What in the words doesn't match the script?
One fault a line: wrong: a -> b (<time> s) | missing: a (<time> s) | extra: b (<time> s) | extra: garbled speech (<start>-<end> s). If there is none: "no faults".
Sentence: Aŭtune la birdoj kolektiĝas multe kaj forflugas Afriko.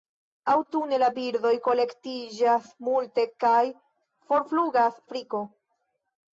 no faults